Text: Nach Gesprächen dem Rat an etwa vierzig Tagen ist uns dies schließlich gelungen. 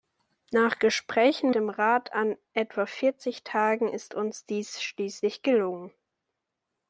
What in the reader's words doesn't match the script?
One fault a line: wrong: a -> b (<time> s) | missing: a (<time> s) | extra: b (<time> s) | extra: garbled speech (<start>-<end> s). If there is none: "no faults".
no faults